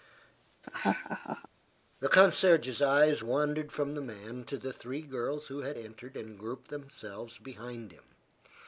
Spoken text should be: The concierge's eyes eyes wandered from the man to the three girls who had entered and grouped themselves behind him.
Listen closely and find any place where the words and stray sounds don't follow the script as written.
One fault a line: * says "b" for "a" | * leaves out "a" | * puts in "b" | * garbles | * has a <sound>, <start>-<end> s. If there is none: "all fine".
* has a laugh, 0.6-1.5 s
* leaves out "eyes"